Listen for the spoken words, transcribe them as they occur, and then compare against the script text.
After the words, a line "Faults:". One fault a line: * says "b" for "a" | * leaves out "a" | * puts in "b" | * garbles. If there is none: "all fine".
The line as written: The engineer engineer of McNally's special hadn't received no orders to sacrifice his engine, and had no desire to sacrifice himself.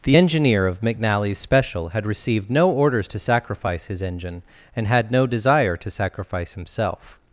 The engineer of McNally's special had received no orders to sacrifice his engine, and had no desire to sacrifice himself.
Faults:
* leaves out "engineer"
* says "had" for "hadn't"